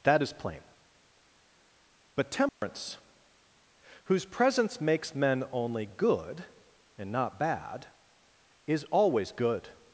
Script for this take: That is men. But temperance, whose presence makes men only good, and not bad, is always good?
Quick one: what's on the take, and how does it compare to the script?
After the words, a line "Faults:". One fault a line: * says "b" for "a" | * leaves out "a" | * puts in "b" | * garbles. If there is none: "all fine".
That is plain. But temperance, whose presence makes men only good, and not bad, is always good?
Faults:
* says "plain" for "men"